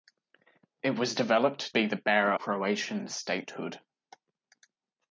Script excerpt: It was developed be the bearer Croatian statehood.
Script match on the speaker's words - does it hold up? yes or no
yes